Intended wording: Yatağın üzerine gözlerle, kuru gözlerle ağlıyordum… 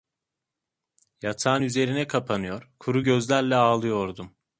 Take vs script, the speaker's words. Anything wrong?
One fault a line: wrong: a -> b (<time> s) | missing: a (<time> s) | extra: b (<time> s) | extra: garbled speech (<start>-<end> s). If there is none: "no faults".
wrong: gözlerle -> kapanıyor (2.1 s)